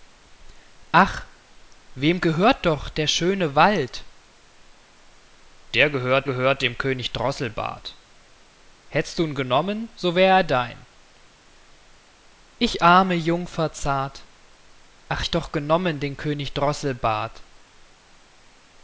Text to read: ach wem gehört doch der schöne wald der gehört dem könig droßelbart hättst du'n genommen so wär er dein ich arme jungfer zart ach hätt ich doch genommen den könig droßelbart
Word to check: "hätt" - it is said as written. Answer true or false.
false